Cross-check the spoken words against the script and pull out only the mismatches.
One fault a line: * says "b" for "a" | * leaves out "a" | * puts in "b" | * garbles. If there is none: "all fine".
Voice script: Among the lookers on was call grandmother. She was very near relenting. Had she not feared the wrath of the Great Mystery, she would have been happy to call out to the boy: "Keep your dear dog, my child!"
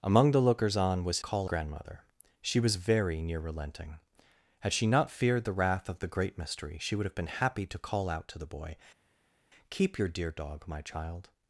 all fine